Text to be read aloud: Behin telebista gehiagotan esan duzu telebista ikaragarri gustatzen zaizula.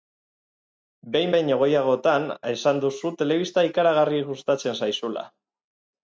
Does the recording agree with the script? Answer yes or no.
no